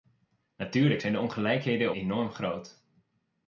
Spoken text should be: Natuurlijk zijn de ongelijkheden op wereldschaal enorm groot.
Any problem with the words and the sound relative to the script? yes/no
yes